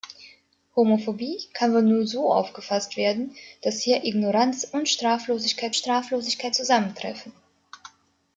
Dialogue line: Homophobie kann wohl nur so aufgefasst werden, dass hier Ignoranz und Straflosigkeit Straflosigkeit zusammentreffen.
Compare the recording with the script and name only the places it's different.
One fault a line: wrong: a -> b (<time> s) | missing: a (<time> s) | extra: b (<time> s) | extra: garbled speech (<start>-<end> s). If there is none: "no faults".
no faults